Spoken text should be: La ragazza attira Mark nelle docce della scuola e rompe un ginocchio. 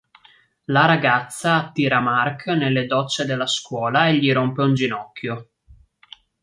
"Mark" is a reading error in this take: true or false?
false